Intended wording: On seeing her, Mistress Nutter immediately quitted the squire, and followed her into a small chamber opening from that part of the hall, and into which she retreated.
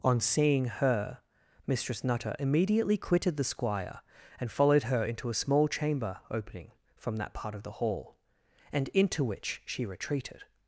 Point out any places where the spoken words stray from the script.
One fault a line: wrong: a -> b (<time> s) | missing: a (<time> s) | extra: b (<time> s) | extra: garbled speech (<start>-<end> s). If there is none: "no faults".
no faults